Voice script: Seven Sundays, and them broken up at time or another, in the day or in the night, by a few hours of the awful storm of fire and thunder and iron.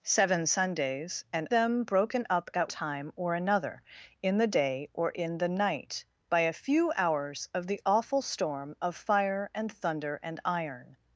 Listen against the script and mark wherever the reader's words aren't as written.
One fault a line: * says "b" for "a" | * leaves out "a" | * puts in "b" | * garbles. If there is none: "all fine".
all fine